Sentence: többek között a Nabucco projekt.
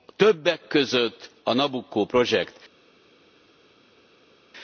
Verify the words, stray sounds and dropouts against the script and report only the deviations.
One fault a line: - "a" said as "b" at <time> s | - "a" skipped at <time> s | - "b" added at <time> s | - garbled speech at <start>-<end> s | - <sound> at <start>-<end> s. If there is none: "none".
none